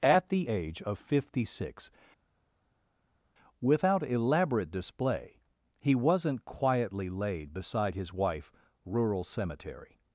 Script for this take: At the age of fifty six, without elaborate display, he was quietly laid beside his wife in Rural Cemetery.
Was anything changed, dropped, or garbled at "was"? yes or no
yes